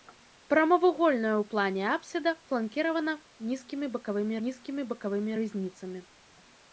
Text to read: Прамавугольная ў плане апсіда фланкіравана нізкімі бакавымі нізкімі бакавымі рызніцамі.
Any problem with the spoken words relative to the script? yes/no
no